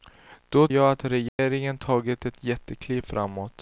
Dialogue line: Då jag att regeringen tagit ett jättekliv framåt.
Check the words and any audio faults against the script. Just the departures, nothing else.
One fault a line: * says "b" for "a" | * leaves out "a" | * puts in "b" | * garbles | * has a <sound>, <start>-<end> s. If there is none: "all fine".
* has a dropout, 1.3-1.4 s